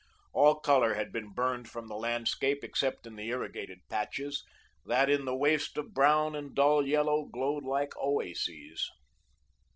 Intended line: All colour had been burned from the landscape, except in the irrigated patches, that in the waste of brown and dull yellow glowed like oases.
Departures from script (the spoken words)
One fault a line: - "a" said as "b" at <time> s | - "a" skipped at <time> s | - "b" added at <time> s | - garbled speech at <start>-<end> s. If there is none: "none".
none